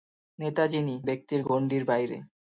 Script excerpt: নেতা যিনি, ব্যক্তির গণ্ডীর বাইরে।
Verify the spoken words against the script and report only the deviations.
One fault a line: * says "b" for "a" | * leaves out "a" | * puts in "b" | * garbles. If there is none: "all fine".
all fine